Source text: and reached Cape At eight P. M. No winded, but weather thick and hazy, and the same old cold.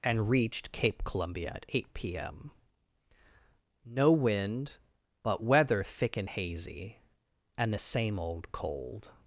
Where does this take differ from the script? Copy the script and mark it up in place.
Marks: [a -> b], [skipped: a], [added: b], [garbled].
and reached Cape [added: Columbia] At eight P. M. No [winded, -> wind] but weather thick and hazy, and the same old cold.